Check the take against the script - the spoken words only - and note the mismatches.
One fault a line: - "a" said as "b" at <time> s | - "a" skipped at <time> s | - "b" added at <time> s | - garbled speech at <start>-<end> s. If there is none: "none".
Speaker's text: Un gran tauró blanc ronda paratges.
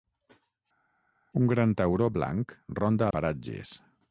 none